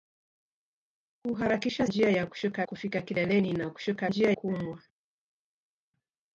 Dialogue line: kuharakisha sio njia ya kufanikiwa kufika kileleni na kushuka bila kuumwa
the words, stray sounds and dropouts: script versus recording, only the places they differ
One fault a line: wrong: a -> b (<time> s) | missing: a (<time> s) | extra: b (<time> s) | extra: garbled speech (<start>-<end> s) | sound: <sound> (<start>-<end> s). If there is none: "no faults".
missing: sio (1.9 s)
wrong: kufanikiwa -> kushuka (2.3 s)
wrong: bila -> njia (4.1 s)